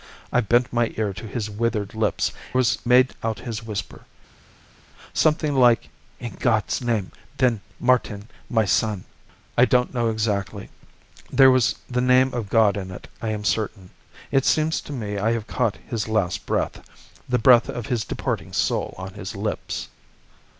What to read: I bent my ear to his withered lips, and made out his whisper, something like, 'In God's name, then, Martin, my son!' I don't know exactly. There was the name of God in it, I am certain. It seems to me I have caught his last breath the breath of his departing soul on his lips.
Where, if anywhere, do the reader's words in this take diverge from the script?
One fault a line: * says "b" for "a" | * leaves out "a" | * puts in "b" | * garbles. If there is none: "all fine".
* says "was" for "and"